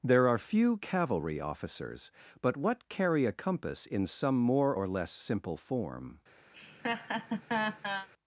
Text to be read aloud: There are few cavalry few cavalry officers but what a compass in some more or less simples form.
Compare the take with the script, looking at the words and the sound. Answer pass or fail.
fail